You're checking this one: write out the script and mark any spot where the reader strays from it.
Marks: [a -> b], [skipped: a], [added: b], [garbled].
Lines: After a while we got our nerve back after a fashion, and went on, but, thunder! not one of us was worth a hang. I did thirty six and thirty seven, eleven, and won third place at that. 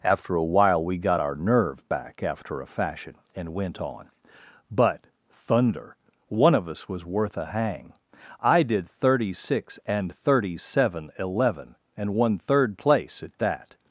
After a while we got our nerve back after a fashion, and went on, but, thunder! [skipped: not] one of us was worth a hang. I did thirty six and thirty seven, eleven, and won third place at that.